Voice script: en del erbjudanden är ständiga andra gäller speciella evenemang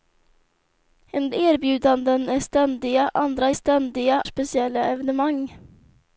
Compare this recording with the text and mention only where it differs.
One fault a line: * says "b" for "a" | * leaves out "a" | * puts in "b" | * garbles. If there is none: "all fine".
* leaves out "del"
* says "ständiga" for "gäller"